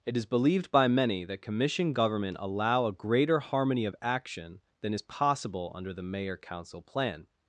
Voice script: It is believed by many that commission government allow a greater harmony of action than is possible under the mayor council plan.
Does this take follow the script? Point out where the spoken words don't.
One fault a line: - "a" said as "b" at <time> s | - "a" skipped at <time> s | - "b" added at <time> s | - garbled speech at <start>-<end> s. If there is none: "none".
none